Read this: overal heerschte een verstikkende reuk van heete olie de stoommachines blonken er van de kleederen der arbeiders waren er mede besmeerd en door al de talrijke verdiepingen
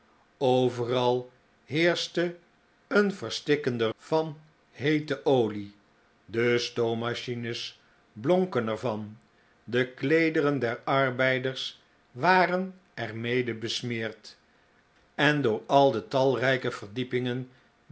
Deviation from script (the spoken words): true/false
true